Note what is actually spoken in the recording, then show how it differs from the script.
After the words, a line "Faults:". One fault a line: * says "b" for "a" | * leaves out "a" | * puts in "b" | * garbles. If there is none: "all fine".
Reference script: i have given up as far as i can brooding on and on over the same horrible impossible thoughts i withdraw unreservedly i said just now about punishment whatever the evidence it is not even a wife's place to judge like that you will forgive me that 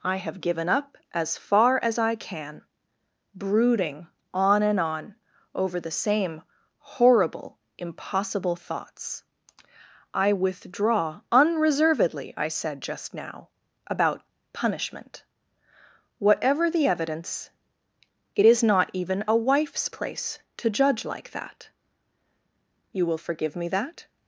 i have given up as far as i can brooding on and on over the same horrible impossible thoughts i withdraw unreservedly i said just now about punishment whatever the evidence it is not even a wife's place to judge like that you will forgive me that
Faults:
all fine